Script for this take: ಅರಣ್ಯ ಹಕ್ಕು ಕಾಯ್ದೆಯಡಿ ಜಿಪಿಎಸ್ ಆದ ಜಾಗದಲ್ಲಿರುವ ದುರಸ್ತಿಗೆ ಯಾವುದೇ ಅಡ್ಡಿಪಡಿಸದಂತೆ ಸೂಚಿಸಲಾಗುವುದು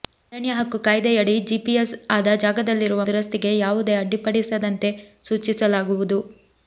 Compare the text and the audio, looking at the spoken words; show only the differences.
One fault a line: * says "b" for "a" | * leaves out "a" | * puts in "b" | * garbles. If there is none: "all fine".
all fine